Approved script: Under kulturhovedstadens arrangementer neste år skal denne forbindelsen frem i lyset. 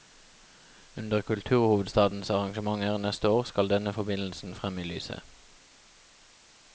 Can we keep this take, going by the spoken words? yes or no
yes